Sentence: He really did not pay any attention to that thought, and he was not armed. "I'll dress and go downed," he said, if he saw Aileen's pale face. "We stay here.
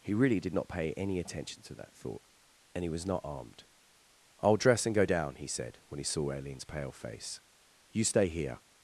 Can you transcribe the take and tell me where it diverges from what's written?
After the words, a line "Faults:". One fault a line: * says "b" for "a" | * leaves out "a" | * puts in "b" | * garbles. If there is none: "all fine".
He really did not pay any attention to that thought, and he was not armed. "I'll dress and go down," he said, when he saw Aileen's pale face. "You stay here.
Faults:
* says "down" for "downed"
* says "when" for "if"
* says "You" for "We"